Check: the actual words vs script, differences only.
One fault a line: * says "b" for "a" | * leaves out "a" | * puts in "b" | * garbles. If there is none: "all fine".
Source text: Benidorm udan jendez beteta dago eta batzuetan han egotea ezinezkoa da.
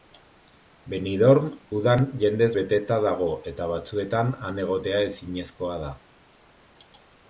all fine